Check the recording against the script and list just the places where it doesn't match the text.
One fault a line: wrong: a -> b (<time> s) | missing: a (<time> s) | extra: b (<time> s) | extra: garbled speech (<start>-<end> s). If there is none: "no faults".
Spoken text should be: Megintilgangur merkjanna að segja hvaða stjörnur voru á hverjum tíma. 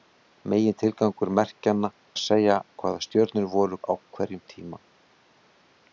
no faults